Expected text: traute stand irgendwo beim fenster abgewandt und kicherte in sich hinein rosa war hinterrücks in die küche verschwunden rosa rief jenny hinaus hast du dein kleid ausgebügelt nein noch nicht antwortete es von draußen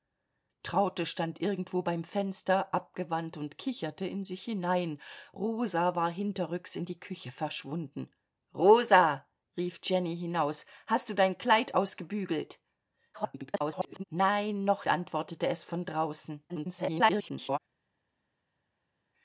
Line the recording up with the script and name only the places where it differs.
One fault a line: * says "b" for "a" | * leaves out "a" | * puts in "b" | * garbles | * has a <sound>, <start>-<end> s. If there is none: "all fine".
* garbles
* leaves out "nicht"
* garbles